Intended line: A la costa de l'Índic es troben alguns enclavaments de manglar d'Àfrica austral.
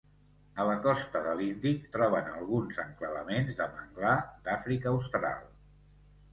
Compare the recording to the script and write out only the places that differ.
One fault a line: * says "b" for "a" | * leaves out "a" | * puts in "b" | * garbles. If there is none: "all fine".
* leaves out "es"